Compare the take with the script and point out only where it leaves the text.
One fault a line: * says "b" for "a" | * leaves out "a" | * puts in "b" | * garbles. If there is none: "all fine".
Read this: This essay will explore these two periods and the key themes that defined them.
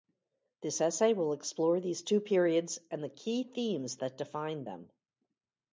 all fine